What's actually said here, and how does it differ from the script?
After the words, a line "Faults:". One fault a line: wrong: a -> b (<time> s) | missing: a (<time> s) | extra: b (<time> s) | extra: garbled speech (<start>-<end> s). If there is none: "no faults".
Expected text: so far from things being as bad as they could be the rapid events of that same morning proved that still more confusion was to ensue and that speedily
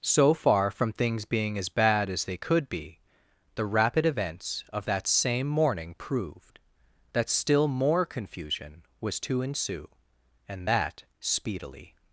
so far from things being as bad as they could be the rapid events of that same morning proved that still more confusion was to ensue and that speedily
Faults:
no faults